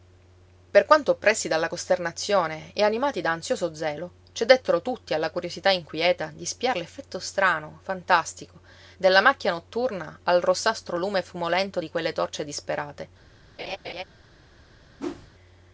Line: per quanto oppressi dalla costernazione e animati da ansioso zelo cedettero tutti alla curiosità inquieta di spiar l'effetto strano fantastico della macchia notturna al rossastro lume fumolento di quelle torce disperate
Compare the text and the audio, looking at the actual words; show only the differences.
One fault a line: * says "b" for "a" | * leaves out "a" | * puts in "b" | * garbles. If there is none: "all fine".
all fine